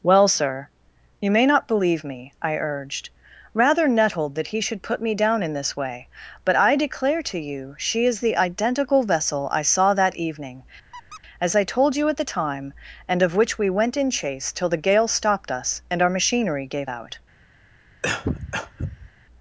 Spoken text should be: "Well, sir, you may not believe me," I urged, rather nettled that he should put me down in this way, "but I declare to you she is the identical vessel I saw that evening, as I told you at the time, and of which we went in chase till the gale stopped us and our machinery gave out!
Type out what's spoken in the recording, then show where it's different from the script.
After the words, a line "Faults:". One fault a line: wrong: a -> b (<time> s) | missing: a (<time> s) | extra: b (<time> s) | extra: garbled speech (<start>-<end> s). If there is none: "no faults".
"Well, sir, you may not believe me," I urged, rather nettled that he should put me down in this way, "but I declare to you she is the identical vessel I saw that evening, as I told you at the time, and of which we went in chase till the gale stopped us and our machinery gave out!
Faults:
no faults